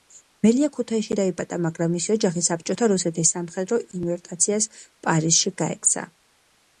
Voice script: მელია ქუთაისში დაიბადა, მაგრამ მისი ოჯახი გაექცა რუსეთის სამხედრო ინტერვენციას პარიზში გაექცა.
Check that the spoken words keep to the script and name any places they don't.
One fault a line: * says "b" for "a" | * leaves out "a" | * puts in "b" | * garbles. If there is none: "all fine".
* says "საბჭოთა" for "გაექცა"